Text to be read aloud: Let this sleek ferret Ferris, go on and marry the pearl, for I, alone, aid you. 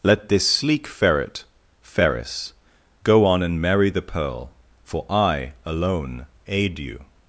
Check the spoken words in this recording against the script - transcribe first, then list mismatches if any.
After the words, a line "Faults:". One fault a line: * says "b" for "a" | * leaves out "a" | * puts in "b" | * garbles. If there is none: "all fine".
Let this sleek ferret Ferris, go on and marry the pearl, for I, alone, aid you.
Faults:
all fine